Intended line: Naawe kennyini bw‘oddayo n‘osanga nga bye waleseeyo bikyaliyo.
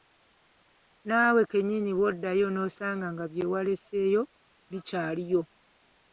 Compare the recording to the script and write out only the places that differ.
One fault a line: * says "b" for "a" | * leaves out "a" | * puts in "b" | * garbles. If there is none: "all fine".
all fine